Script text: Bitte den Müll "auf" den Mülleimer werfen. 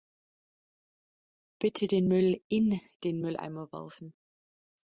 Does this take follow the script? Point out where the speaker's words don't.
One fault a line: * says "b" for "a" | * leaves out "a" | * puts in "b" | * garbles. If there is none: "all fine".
* says "in" for "auf"